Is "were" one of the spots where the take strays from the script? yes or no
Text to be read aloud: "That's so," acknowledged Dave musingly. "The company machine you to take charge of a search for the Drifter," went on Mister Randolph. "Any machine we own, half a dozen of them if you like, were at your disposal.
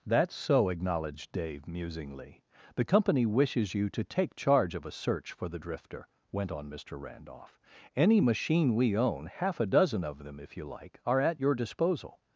yes